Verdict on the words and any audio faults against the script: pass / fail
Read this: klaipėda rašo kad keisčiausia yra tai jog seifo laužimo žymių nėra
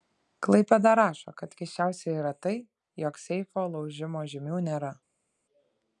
pass